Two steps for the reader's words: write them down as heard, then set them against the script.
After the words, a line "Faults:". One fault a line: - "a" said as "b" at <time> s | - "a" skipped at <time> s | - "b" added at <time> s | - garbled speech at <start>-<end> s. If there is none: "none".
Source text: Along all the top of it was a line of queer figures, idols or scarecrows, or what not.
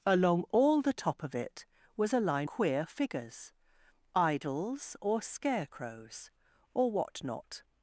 Along all the top of it was a line queer figures, idols or scarecrows, or what not.
Faults:
- "of" skipped at 2.5 s